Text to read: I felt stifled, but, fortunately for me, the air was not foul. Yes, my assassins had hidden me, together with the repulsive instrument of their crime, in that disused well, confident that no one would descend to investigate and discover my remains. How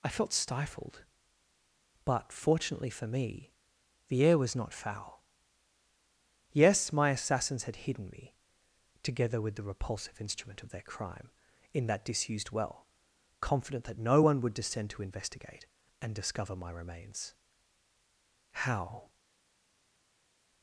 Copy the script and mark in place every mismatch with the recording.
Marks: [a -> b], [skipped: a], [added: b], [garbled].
I felt stifled, but, fortunately for me, the air was not foul. Yes, my assassins had hidden me, together with the repulsive instrument of their crime, in that disused well, confident that no one would descend to investigate and discover my remains. How